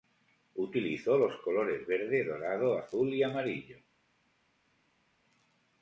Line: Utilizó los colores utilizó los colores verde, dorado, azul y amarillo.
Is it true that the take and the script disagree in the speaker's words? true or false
true